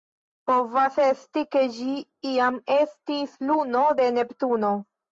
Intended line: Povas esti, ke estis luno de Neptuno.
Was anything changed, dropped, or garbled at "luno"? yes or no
no